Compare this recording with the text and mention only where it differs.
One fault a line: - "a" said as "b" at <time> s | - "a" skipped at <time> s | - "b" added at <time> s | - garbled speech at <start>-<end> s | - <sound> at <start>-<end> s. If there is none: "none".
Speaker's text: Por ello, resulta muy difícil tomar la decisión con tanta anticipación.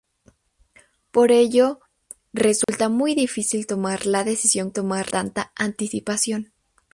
- dropout at 2.6-2.7 s
- "con" said as "tomar" at 4.7 s